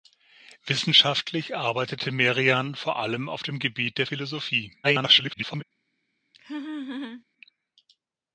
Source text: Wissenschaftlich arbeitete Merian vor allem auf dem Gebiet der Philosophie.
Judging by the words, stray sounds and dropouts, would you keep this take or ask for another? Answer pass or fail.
fail